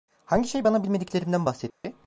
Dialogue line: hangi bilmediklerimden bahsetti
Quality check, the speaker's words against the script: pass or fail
fail